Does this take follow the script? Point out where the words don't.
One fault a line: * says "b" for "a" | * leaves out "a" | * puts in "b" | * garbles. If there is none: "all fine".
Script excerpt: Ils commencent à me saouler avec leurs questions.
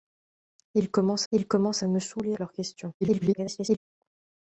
* puts in "ils commencent"
* leaves out "avec"
* garbles